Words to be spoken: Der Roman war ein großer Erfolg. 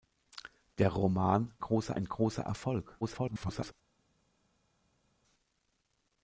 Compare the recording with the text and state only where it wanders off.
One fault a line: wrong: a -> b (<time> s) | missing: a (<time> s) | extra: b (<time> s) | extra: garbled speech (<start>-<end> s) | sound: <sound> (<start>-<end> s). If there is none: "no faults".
wrong: war -> großer (1.6 s)
extra: garbled speech (3.0-3.7 s)